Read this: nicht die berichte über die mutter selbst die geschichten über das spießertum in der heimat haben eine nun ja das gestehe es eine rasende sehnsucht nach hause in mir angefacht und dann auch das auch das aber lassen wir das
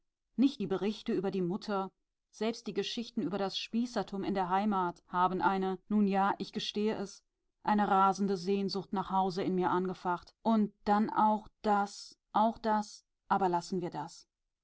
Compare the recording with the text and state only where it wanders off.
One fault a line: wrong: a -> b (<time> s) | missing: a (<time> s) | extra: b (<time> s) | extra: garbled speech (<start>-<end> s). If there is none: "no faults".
wrong: das -> ich (6.4 s)